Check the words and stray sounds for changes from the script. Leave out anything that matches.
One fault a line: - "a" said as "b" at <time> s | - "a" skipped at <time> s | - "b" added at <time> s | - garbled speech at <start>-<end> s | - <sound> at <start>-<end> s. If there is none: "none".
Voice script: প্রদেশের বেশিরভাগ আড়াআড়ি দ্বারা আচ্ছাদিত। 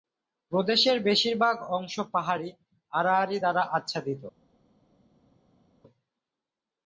- "অংশ পাহাড়ী" added at 1.8 s